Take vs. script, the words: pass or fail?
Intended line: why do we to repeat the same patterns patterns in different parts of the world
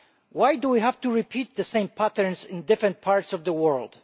fail